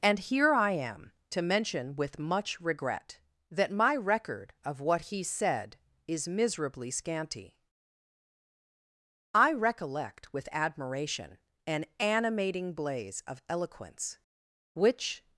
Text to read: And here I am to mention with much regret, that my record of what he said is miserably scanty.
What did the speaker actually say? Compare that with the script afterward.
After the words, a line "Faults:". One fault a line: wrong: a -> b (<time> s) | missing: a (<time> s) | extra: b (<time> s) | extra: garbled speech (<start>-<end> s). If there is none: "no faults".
And here I am to mention with much regret, that my record of what he said is miserably scanty. I recollect with admiration an animating blaze of eloquence, which
Faults:
extra: I recollect with admiration an animating blaze of eloquence which (9.3 s)